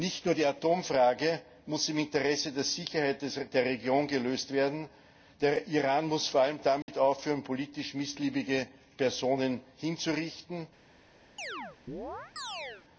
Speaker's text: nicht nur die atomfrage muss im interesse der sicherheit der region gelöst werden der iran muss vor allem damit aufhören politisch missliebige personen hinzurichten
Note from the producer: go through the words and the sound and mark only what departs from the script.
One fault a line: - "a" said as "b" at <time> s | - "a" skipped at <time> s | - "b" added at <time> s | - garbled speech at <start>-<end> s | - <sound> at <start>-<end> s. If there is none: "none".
- dropout at 6.8-6.9 s
- chirp at 11.4-12.8 s